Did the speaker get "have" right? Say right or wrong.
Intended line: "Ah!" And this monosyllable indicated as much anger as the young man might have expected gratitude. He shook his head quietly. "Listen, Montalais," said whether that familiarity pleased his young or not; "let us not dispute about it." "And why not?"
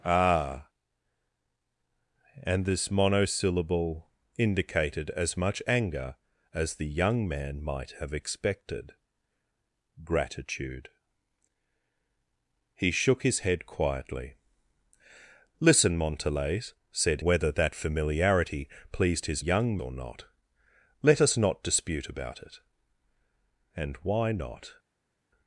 right